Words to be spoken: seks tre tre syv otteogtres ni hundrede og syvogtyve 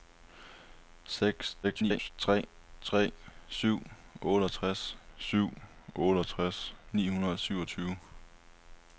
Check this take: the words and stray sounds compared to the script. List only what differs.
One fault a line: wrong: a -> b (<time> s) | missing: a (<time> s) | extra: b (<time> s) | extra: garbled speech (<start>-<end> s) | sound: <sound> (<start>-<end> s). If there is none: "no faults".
extra: garbled speech (1.6-2.1 s)
extra: syv otteogtres (5.2 s)